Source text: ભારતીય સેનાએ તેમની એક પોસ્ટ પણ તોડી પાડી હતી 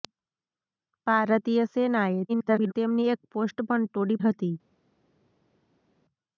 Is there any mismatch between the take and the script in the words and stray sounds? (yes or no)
yes